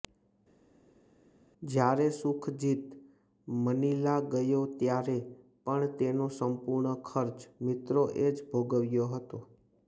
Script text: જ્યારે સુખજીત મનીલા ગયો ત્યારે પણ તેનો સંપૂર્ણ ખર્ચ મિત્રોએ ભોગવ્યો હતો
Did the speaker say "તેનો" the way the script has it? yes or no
yes